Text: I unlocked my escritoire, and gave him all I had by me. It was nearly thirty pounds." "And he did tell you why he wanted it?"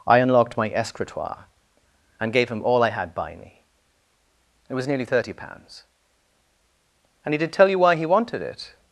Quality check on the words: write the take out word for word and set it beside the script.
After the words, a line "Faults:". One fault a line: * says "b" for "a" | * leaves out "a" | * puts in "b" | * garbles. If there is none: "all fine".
I unlocked my escritoire, and gave him all I had by me. It was nearly thirty pounds." "And he did tell you why he wanted it?"
Faults:
all fine